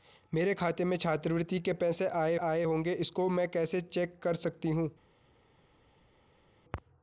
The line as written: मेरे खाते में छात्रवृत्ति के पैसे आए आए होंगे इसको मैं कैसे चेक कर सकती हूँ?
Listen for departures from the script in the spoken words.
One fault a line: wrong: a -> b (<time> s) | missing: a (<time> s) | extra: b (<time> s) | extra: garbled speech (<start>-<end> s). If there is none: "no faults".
no faults